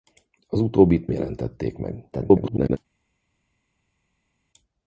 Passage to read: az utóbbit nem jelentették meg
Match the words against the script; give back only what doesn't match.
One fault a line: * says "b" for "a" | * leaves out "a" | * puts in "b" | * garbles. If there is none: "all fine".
* leaves out "nem"
* garbles